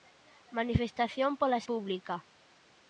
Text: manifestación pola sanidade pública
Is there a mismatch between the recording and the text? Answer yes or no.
yes